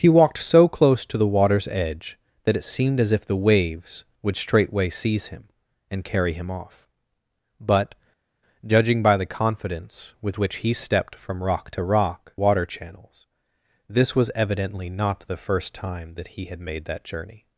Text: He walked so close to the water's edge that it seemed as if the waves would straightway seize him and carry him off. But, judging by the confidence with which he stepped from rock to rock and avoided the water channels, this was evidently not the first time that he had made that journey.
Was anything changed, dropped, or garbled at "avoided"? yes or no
yes